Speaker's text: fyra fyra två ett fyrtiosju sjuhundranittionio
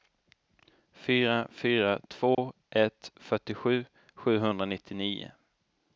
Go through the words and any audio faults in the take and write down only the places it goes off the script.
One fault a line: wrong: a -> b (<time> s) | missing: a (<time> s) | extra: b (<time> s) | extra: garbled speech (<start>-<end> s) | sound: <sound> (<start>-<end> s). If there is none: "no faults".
sound: dropout (2.3-2.4 s)